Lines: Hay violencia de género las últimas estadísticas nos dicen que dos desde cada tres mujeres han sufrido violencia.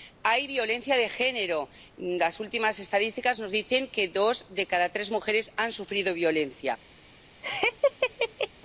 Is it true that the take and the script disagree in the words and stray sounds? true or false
true